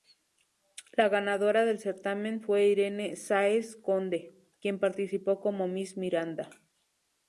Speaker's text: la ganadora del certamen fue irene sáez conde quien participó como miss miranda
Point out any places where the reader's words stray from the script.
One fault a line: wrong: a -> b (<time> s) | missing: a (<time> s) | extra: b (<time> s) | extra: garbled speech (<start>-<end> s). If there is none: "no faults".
no faults